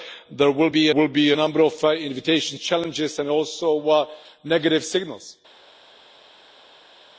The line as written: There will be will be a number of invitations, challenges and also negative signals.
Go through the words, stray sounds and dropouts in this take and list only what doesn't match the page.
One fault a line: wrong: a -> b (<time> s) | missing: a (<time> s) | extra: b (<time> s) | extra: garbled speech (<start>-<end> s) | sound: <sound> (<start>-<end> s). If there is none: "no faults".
no faults